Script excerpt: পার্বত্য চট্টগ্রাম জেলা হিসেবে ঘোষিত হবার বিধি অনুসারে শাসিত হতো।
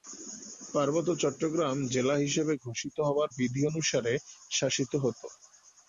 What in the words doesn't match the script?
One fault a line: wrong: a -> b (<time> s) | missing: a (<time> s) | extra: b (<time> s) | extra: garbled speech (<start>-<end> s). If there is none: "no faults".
no faults